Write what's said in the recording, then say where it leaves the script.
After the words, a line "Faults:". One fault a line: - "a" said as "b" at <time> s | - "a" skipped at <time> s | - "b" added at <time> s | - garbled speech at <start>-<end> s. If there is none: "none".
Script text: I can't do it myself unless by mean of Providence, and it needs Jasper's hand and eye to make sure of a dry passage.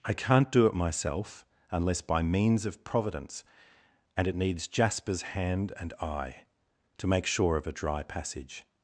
I can't do it myself unless by means of Providence, and it needs Jasper's hand and eye to make sure of a dry passage.
Faults:
- "mean" said as "means" at 2.2 s